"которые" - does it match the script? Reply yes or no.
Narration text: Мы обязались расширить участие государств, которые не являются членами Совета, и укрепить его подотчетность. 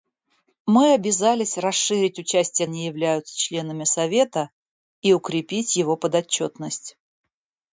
no